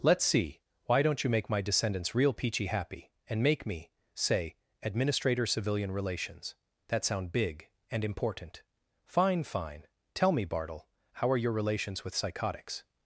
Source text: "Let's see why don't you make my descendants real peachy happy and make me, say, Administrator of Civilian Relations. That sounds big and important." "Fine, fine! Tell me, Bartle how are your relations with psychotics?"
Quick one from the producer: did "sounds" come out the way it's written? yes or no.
no